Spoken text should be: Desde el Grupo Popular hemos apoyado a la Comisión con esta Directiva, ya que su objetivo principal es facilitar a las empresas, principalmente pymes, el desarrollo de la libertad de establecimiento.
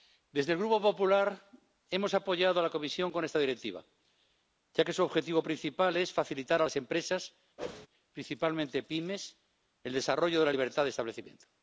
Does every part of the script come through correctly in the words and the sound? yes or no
no